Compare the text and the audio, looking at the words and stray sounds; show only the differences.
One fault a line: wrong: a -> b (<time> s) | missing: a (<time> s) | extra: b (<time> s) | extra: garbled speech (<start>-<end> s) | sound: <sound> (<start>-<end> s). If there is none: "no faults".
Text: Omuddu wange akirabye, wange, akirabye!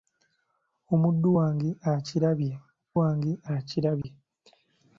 sound: dropout (4.0-4.0 s)